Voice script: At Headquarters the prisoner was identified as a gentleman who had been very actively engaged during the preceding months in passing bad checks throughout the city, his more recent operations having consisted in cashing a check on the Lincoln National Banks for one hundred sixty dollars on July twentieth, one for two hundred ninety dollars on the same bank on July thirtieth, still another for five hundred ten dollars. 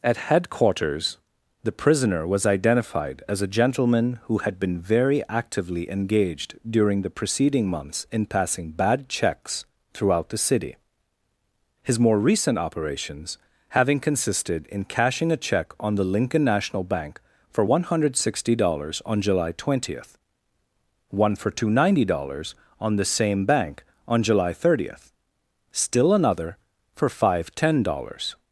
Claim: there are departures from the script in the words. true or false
true